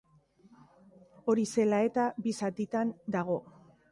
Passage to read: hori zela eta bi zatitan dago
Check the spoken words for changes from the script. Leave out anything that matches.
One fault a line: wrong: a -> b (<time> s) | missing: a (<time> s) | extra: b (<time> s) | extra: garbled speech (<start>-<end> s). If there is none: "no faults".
no faults